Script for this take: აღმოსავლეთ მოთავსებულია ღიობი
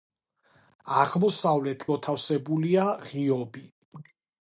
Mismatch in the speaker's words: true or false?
false